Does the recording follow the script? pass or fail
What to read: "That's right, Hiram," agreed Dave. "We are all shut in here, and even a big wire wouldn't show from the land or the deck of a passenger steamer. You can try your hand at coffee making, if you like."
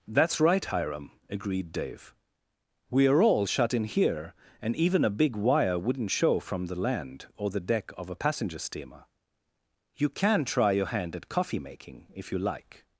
pass